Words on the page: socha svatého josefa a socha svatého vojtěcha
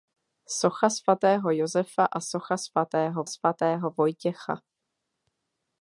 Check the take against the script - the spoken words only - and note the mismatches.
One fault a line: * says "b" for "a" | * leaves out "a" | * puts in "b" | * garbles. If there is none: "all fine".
* puts in "svatého"